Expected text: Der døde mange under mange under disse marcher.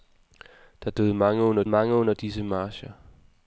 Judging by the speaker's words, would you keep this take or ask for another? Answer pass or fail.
pass